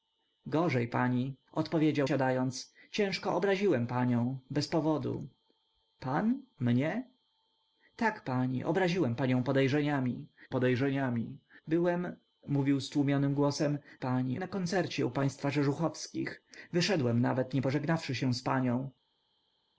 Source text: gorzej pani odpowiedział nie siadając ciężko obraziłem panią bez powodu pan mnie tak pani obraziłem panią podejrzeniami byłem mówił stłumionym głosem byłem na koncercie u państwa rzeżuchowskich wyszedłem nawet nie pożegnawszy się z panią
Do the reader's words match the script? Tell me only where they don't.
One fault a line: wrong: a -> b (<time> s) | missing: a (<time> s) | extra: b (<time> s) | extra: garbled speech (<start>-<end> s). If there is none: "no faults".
missing: nie (2.1 s)
extra: podejrzeniami (10.5 s)
wrong: byłem -> pani (14.0 s)